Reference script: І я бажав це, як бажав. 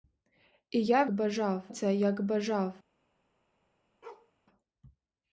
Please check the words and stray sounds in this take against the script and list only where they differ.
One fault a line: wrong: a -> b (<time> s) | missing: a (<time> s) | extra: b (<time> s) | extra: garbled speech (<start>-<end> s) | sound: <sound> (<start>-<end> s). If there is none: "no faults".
sound: bark (4.0-4.3 s)